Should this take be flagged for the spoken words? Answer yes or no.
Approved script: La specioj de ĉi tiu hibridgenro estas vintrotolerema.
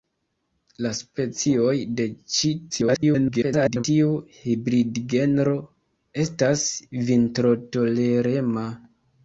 yes